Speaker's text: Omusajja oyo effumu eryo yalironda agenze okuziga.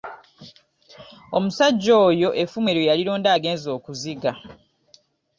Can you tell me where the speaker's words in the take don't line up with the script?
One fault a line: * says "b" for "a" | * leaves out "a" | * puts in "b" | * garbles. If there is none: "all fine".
all fine